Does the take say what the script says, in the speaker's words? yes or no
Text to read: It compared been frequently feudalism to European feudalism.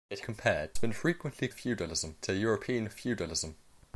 yes